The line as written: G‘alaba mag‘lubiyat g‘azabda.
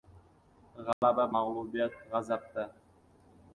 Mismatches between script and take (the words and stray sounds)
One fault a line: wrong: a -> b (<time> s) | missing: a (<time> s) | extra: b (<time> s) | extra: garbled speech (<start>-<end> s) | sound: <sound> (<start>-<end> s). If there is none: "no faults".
sound: dropout (0.9-1.0 s)